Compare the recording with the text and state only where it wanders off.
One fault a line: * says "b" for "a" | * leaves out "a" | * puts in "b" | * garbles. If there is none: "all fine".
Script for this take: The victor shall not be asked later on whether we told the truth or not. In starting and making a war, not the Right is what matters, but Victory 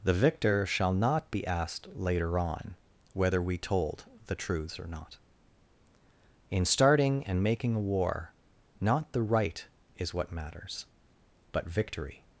* says "truths" for "truth"